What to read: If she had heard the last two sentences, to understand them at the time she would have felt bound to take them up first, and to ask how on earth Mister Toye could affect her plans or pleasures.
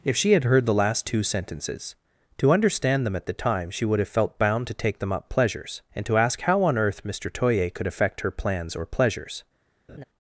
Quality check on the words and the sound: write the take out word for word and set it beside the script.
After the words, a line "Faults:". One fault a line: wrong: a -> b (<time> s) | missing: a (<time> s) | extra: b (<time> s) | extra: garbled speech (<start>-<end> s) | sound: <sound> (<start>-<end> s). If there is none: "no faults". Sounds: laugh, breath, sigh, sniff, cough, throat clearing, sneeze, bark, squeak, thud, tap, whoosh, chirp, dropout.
If she had heard the last two sentences, to understand them at the time she would have felt bound to take them up pleasures, and to ask how on earth Mister Toye could affect her plans or pleasures.
Faults:
wrong: first -> pleasures (5.2 s)
sound: laugh (9.9-10.0 s)